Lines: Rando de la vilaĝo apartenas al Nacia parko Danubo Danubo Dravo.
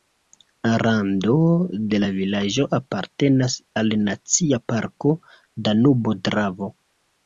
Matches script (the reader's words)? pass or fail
fail